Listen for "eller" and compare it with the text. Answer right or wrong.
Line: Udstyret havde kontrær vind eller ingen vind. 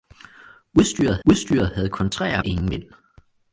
wrong